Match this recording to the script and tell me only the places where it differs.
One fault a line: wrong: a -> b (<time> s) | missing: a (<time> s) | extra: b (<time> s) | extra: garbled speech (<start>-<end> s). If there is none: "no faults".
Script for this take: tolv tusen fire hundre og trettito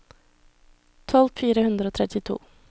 missing: tusen (1.3 s)